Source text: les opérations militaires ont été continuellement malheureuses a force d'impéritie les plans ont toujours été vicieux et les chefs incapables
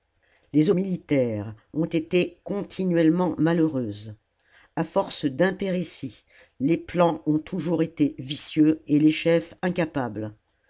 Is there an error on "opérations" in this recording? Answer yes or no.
yes